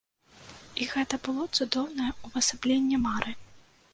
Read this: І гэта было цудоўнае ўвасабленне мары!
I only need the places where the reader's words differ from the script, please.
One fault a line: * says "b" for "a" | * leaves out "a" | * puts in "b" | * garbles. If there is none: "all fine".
all fine